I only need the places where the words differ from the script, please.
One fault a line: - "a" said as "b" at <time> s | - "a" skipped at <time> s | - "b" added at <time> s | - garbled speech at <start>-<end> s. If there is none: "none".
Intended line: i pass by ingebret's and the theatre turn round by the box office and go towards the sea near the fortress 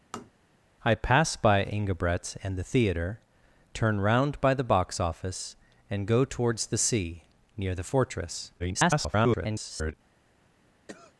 - garbled speech at 8.6-9.9 s